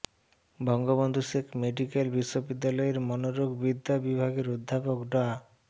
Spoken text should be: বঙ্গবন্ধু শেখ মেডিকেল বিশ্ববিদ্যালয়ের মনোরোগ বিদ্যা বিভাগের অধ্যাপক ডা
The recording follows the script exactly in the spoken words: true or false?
true